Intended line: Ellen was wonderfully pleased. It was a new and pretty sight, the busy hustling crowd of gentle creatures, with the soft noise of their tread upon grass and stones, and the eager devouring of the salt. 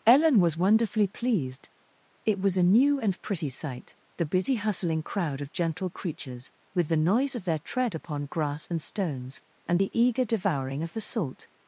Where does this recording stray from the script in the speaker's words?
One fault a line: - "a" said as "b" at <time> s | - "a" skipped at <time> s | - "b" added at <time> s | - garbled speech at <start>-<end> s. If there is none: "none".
- "soft" skipped at 7.0 s